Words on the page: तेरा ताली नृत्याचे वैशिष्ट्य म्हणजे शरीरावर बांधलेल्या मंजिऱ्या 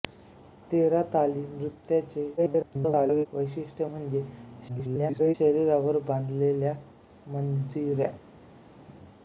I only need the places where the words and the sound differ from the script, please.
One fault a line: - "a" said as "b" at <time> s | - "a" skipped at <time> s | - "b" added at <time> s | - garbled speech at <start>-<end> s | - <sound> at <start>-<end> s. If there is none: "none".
- garbled speech at 2.4-3.3 s
- garbled speech at 4.7-5.3 s